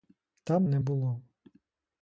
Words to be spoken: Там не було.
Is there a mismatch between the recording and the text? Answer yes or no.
no